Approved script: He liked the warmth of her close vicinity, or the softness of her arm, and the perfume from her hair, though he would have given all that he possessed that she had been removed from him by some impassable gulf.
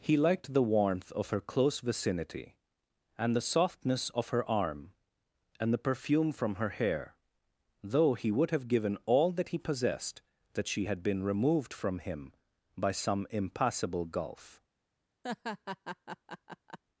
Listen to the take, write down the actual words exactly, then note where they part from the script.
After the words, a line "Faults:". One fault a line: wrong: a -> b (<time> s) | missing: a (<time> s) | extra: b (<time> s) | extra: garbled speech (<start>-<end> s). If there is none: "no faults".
He liked the warmth of her close vicinity, and the softness of her arm, and the perfume from her hair, though he would have given all that he possessed that she had been removed from him by some impassable gulf.
Faults:
wrong: or -> and (3.2 s)